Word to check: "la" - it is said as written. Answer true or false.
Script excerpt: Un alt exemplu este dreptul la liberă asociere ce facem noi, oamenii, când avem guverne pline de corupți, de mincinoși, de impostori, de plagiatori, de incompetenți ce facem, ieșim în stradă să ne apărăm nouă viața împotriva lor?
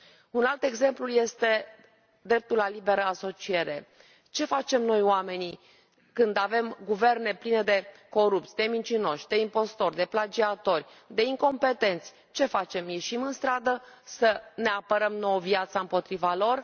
true